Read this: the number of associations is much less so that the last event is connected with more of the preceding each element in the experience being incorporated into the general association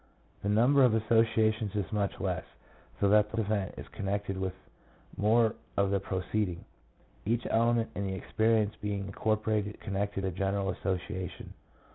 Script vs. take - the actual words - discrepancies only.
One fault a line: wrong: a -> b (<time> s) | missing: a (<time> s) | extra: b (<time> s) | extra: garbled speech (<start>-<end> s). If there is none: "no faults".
missing: last (3.4 s)
wrong: into -> connected (9.8 s)